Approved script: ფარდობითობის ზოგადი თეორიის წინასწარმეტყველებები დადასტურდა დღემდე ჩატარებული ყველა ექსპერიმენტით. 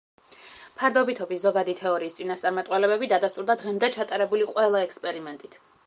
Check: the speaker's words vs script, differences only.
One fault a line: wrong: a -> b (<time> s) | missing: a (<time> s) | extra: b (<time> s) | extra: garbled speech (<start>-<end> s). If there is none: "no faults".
no faults